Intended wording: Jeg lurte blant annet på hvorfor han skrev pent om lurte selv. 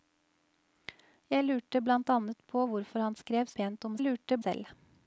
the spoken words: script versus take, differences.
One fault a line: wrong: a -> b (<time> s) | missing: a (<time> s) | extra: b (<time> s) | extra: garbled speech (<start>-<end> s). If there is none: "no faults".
no faults